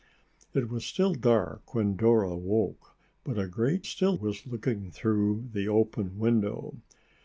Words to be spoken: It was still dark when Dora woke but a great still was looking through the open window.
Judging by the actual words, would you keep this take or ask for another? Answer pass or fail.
pass